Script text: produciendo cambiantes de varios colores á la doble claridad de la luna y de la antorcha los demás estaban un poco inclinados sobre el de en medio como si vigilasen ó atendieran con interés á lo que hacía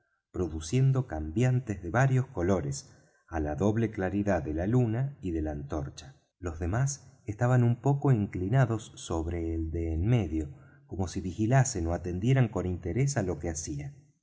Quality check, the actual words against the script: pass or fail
pass